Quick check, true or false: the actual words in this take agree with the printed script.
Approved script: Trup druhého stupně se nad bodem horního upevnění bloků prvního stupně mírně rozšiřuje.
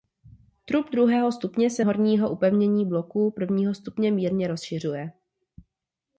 false